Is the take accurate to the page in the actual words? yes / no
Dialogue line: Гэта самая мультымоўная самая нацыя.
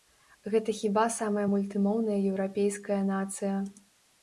no